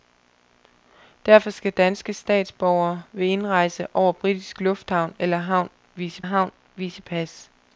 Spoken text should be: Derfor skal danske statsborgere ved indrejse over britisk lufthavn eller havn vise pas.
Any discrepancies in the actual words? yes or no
yes